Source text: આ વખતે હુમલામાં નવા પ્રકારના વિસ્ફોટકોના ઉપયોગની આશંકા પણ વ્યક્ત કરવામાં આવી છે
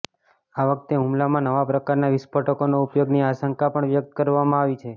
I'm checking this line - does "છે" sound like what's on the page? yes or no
yes